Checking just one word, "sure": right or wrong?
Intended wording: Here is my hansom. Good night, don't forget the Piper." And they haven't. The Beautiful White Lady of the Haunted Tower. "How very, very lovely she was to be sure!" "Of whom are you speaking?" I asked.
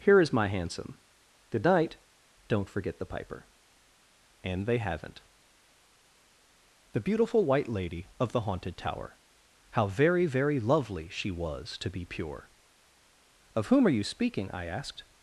wrong